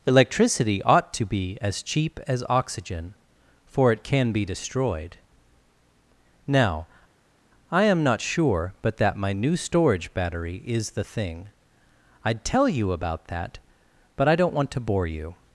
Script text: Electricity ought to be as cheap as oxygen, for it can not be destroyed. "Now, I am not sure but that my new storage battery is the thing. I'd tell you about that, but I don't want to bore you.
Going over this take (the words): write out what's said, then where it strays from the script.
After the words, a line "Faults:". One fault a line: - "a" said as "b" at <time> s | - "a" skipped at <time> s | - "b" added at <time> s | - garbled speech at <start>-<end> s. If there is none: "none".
Electricity ought to be as cheap as oxygen, for it can be destroyed. "Now, I am not sure but that my new storage battery is the thing. I'd tell you about that, but I don't want to bore you.
Faults:
- "not" skipped at 4.3 s